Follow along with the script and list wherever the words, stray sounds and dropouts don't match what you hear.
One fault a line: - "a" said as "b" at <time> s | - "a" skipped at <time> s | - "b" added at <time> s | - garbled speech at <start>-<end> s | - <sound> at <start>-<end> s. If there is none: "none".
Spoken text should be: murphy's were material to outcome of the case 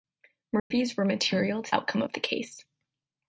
- dropout at 0.6-0.7 s